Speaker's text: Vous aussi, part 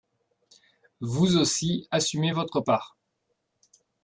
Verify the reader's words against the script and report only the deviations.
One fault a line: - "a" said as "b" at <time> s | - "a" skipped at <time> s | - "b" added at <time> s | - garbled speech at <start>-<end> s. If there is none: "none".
- "assumez votre" added at 1.9 s